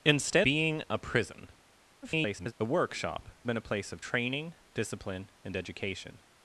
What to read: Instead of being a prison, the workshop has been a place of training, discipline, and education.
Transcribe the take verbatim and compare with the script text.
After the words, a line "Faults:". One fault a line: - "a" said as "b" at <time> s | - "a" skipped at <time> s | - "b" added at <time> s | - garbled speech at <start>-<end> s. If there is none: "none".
Instead being a prison, [garbled] the workshop been a place of training, discipline, and education.
Faults:
- "of" skipped at 0.5 s
- garbled speech at 2.0-2.5 s
- "has" skipped at 3.3 s